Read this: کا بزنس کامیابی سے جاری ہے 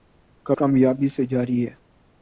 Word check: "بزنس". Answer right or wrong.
wrong